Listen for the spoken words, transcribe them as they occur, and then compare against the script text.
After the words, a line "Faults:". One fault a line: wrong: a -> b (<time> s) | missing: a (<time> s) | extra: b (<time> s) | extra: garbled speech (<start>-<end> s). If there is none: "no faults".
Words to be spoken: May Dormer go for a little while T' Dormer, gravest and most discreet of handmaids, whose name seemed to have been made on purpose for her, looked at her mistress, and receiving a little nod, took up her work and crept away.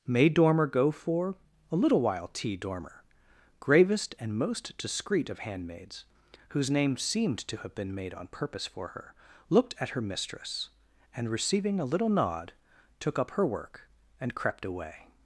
May Dormer go for a little while T' Dormer, gravest and most discreet of handmaids, whose name seemed to have been made on purpose for her, looked at her mistress, and receiving a little nod, took up her work and crept away.
Faults:
no faults